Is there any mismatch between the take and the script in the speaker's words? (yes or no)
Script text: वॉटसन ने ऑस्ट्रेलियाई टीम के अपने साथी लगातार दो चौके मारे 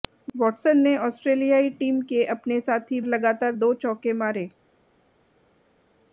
no